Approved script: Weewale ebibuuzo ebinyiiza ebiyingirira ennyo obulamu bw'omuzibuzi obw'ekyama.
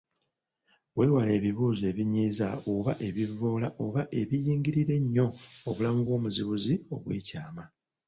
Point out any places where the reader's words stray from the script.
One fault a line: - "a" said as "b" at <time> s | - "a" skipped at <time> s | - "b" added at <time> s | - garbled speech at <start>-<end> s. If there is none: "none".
- "oba ebivvoola oba" added at 2.7 s